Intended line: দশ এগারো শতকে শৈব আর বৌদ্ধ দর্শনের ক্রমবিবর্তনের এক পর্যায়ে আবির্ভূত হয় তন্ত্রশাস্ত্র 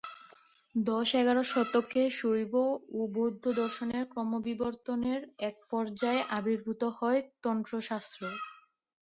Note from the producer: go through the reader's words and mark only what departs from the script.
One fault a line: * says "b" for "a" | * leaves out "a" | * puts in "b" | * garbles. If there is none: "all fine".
* says "ও" for "আর"